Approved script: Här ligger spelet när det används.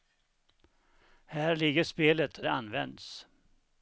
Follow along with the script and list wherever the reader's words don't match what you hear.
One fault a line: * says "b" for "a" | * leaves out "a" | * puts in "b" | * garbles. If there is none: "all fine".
* leaves out "när"